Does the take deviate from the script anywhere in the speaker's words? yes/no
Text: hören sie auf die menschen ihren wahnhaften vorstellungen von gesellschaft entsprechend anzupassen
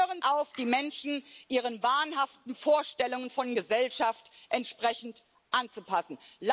yes